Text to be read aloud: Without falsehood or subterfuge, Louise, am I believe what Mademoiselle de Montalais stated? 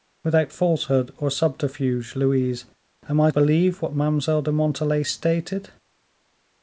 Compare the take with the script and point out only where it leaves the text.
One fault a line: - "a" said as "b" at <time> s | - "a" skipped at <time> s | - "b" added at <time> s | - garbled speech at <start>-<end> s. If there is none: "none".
none